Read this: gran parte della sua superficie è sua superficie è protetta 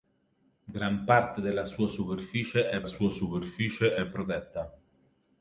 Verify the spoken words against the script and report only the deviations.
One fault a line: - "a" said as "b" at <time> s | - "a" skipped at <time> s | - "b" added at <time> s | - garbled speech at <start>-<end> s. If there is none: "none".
none